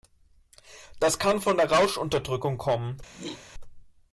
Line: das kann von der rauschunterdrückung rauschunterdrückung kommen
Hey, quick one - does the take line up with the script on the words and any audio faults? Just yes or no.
no